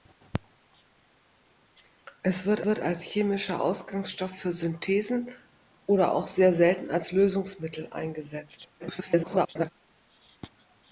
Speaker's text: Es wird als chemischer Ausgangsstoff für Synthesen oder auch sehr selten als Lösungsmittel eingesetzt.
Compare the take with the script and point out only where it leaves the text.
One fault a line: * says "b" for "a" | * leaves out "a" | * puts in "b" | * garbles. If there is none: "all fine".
* puts in "wird"
* garbles